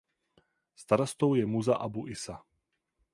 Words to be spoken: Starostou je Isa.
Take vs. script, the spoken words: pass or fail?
fail